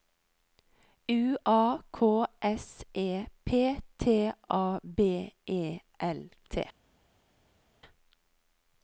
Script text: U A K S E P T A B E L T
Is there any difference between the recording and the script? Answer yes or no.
no